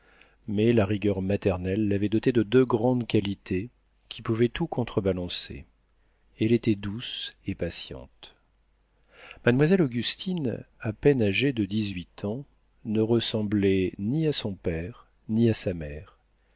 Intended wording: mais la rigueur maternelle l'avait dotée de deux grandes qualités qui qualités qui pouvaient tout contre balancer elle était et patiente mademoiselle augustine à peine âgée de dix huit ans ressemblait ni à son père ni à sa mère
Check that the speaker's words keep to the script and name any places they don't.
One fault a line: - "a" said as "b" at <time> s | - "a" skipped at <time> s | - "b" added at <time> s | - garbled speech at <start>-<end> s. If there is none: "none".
- "qualités qui" skipped at 4.2 s
- "douce" added at 6.8 s
- "ne" added at 12.9 s